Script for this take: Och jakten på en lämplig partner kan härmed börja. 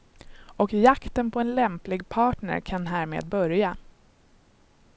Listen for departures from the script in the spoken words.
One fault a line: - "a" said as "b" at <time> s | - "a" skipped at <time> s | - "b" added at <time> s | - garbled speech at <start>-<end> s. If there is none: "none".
none